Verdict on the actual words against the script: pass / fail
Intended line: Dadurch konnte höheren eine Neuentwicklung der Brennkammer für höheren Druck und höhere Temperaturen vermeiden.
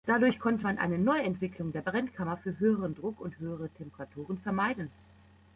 fail